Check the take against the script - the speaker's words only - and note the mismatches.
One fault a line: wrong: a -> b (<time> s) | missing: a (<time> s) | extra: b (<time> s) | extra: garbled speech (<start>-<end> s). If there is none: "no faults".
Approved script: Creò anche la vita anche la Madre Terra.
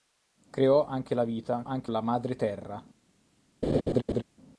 no faults